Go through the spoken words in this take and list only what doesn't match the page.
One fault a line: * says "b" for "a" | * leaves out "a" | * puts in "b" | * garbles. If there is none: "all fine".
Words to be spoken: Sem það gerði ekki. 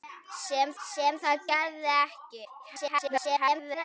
* puts in "sem"
* garbles